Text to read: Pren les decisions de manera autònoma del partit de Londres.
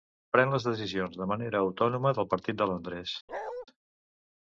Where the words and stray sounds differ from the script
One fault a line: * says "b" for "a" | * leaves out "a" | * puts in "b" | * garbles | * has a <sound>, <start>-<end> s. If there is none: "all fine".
* has a bark, 3.3-3.7 s